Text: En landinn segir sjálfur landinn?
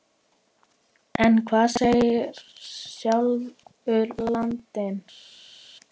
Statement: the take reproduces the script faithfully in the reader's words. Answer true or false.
false